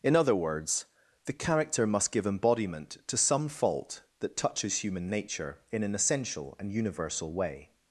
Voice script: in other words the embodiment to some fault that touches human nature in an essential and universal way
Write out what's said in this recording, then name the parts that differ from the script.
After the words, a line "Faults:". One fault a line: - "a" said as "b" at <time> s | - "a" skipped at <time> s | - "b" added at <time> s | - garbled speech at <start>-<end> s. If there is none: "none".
in other words the character must give embodiment to some fault that touches human nature in an essential and universal way
Faults:
- "character must give" added at 1.3 s